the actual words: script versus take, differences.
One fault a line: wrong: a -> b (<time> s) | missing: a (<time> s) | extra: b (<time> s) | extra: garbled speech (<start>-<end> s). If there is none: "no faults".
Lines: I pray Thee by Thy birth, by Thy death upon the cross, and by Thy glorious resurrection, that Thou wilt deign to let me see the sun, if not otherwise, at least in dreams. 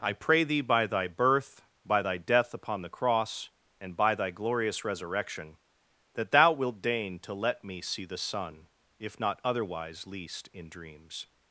missing: at (10.1 s)